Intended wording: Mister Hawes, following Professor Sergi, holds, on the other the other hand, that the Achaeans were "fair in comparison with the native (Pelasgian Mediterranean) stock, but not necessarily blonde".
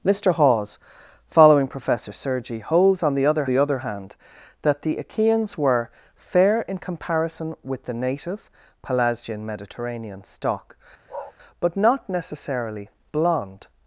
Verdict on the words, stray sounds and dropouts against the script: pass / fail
fail